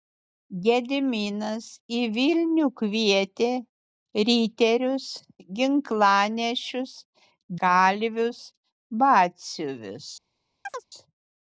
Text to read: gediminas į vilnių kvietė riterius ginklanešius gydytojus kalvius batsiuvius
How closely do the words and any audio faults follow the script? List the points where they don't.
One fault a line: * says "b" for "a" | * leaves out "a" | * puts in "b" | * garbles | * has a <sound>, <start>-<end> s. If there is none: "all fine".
* leaves out "gydytojus"
* has a chirp, 10.6-10.9 s